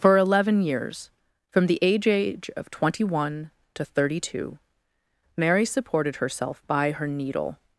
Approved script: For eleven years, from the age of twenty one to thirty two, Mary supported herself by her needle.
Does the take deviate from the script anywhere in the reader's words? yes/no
yes